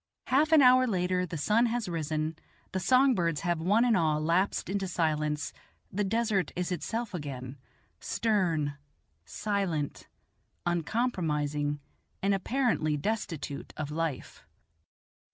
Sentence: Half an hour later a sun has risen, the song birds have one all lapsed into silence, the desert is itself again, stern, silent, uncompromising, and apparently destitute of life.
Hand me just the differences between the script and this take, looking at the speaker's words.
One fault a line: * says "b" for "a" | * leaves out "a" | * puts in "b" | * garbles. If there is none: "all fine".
* says "the" for "a"
* puts in "and"